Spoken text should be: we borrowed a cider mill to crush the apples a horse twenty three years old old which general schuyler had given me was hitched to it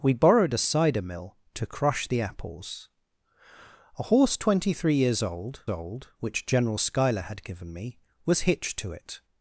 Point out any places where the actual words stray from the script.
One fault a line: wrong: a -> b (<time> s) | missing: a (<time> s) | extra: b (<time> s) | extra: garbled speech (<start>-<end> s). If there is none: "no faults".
no faults